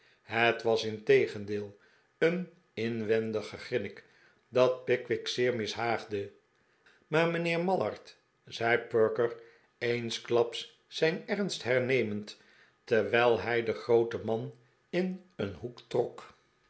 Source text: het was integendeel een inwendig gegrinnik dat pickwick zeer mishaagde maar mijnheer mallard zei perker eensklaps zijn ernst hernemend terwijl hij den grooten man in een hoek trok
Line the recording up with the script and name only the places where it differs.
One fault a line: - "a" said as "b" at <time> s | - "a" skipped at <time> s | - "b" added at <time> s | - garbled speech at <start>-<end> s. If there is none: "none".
none